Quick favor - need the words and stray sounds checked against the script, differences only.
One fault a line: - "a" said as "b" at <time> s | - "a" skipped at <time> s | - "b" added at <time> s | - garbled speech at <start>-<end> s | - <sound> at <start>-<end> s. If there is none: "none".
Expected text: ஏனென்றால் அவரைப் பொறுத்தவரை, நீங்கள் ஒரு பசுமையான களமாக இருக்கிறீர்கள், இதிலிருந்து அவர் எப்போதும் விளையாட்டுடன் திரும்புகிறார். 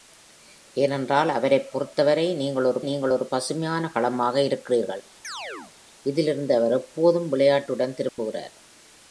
- "நீங்கள் ஒரு" added at 2.8 s
- chirp at 5.2-5.7 s
- dropout at 8.1-8.2 s